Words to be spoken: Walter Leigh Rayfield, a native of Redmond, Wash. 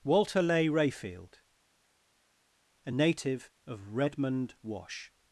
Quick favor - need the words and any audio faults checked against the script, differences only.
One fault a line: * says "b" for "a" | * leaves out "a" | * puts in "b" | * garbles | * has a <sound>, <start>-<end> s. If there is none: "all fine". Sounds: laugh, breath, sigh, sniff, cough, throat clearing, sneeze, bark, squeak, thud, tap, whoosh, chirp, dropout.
all fine